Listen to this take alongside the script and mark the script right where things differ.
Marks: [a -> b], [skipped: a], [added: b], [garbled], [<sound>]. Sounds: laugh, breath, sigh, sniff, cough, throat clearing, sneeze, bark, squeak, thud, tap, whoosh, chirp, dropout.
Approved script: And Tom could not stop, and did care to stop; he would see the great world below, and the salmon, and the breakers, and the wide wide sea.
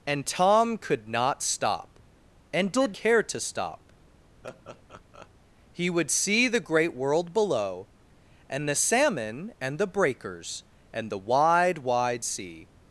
And Tom could not stop, and did care to stop; [laugh] he would see the great world below, and the salmon, and the breakers, and the wide wide sea.